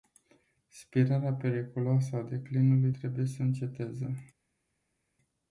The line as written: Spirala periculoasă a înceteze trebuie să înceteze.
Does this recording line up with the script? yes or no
no